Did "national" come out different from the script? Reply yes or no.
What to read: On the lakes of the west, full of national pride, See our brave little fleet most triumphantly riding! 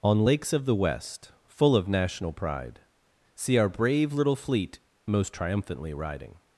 no